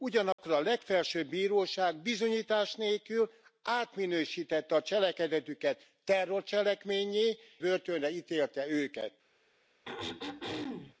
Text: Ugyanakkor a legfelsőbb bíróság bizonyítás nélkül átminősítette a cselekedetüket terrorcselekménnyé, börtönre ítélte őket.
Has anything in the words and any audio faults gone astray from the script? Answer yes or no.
yes